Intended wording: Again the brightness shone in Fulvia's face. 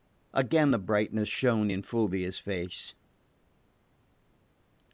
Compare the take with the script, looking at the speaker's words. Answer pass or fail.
pass